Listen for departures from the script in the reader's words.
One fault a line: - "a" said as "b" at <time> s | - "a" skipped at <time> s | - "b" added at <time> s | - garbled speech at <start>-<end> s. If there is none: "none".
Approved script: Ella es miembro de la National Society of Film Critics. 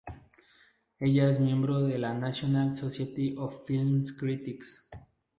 none